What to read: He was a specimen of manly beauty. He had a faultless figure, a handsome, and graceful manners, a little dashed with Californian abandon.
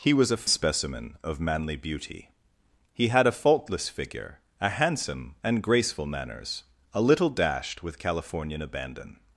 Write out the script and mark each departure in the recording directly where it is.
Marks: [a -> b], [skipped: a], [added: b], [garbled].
He was a specimen of manly beauty. He had a faultless figure, a handsome, and graceful manners, a little dashed with Californian abandon.